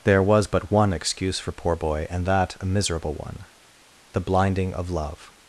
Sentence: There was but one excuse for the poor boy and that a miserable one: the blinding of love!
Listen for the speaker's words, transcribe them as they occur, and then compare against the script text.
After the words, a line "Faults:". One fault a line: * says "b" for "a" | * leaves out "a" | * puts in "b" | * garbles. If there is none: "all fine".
There was but one excuse for poor boy and that a miserable one: the blinding of love!
Faults:
* leaves out "the"